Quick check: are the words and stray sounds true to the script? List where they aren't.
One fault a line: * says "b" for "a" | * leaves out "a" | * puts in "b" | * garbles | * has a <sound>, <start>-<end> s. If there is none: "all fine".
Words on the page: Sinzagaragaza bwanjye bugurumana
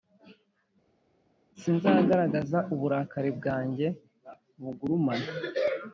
* puts in "uburakari"